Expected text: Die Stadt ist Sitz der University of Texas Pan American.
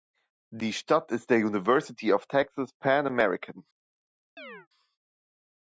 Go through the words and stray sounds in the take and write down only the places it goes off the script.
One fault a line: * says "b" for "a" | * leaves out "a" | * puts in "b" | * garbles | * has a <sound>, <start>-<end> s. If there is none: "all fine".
* leaves out "Sitz"
* has a chirp, 4.4-4.7 s